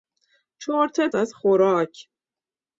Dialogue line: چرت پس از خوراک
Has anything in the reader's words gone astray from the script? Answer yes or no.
yes